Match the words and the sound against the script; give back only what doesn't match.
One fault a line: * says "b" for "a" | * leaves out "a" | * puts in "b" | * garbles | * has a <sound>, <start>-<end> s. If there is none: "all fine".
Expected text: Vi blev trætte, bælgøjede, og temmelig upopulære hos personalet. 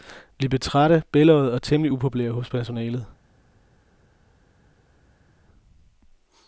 all fine